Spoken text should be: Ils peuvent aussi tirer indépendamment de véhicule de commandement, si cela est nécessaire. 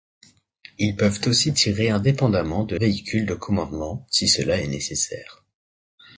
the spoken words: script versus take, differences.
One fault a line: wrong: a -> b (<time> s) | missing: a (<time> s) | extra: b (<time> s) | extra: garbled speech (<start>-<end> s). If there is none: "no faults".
no faults